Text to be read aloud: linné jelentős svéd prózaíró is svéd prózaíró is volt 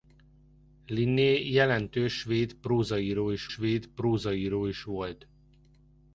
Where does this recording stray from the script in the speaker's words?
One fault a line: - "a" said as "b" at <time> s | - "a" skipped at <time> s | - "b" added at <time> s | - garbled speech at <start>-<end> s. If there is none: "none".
none